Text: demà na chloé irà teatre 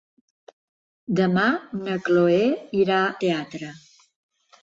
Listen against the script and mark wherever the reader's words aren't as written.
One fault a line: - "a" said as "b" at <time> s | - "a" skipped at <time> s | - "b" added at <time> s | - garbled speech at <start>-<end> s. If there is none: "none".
none